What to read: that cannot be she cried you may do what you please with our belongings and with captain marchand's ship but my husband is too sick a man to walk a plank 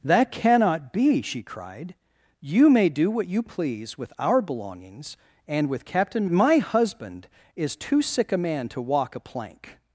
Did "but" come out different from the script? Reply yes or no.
yes